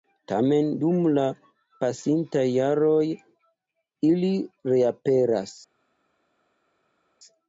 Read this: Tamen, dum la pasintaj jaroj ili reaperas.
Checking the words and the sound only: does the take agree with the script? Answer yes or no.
yes